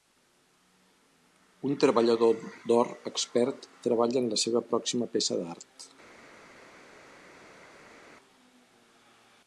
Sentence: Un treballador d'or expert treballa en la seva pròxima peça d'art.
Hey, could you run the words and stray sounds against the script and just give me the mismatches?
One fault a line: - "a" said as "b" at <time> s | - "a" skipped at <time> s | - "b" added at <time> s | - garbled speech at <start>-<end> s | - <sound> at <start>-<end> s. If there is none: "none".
none